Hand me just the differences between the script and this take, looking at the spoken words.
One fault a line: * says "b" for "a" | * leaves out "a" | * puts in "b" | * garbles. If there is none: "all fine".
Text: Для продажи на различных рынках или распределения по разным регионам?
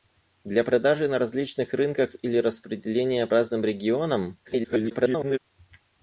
* leaves out "по"
* garbles